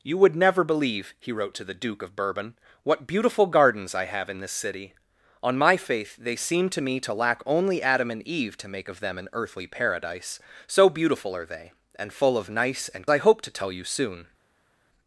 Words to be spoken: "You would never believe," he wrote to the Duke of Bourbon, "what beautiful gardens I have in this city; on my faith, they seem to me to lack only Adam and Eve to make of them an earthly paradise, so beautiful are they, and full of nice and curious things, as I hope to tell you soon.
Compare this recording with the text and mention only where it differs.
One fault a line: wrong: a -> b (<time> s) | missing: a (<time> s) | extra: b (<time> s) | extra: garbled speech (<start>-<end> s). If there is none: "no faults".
missing: curious things as (13.1 s)